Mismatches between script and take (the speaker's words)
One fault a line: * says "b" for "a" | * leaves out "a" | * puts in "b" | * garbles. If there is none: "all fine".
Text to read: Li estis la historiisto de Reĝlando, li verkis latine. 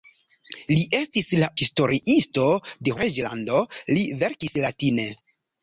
all fine